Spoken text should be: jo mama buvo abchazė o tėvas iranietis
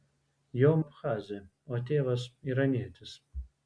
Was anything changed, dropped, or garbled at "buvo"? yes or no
yes